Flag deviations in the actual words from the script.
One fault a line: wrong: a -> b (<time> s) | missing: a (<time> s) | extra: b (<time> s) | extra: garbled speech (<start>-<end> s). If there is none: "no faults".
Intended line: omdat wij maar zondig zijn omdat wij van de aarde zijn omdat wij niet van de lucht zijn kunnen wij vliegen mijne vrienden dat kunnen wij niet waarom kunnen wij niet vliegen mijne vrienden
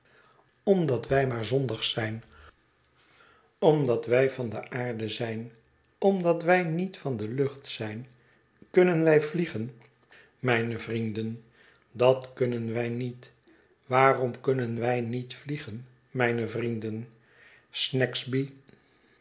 no faults